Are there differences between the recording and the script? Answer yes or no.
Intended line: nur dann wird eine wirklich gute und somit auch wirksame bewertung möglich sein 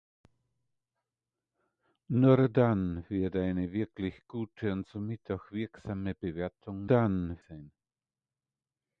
yes